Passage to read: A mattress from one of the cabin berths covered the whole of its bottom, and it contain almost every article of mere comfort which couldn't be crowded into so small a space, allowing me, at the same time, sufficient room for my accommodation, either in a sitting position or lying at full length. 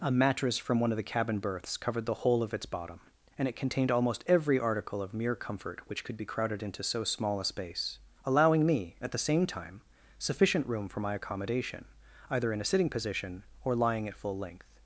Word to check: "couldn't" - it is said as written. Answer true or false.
false